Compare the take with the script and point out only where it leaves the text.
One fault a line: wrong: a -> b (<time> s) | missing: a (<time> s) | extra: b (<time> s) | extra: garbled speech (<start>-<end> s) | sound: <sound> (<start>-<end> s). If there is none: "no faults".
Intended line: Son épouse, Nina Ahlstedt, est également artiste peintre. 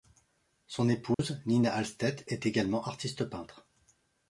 sound: dropout (1.1-1.2 s)